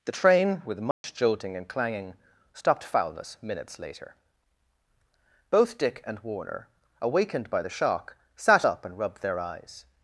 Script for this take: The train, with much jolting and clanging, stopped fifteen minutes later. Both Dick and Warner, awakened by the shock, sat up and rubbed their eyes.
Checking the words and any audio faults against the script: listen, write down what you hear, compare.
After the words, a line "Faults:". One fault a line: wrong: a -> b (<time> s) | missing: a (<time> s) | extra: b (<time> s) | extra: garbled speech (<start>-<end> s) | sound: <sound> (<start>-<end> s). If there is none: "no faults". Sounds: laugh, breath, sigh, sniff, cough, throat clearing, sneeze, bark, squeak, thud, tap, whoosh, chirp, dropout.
The train, with much jolting and clanging, stopped foulness minutes later. Both Dick and Warner, awakened by the shock, sat up and rubbed their eyes.
Faults:
sound: dropout (0.9-1.0 s)
wrong: fifteen -> foulness (2.8 s)